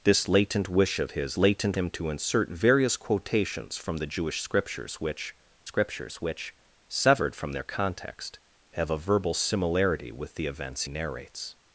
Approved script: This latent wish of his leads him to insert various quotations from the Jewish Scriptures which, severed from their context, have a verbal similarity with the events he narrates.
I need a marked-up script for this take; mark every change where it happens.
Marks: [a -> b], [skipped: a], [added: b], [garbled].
This latent wish of his [leads -> latent] him to insert various quotations from the Jewish Scriptures which, [added: Scriptures which] severed from their context, have a verbal similarity with the events [skipped: he] narrates.